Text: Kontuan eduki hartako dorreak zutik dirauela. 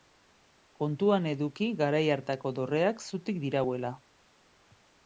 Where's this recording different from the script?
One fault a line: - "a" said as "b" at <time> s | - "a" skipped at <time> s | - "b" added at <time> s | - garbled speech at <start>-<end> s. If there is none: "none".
- "garai" added at 1.8 s